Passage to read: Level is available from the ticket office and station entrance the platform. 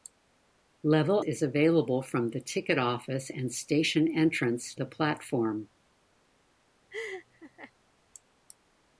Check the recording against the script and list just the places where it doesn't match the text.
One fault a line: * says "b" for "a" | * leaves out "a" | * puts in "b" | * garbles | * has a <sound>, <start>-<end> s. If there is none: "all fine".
* has a laugh, 6.9-7.7 s